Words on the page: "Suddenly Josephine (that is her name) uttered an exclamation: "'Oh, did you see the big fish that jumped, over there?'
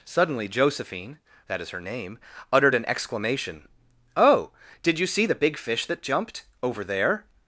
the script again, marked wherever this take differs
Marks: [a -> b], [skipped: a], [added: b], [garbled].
"Suddenly Josephine (that is her name) uttered an exclamation: "'Oh, did you see the big fish that jumped, over there?'